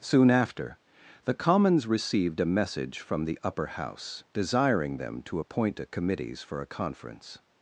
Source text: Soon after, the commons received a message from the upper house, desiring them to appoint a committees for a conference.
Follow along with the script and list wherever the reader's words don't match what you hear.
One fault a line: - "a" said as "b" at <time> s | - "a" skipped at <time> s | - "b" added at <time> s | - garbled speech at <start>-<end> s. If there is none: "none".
none